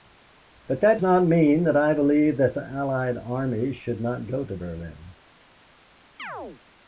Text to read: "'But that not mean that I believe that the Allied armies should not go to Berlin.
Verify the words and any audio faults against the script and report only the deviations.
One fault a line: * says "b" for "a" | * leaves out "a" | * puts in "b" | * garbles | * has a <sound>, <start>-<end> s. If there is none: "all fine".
* has a chirp, 6.2-6.6 s